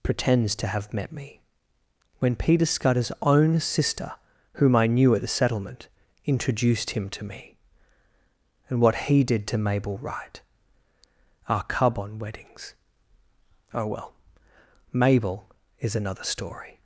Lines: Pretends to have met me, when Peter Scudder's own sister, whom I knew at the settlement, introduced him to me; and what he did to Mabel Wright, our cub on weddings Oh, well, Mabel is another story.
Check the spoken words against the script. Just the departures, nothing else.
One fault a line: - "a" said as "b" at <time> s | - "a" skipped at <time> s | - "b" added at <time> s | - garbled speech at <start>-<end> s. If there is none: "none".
none